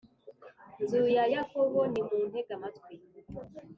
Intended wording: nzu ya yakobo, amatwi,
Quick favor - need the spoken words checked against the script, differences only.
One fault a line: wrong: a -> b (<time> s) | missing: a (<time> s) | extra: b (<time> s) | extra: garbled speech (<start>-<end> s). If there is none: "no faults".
extra: nimuntege (1.9 s)